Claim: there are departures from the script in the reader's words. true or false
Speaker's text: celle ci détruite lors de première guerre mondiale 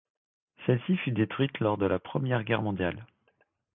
true